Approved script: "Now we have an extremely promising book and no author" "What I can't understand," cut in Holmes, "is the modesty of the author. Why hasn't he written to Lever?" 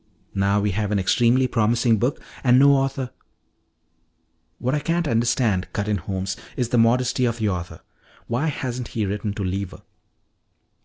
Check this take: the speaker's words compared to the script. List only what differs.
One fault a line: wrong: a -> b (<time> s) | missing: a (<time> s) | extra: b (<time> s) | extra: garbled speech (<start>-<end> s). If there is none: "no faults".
no faults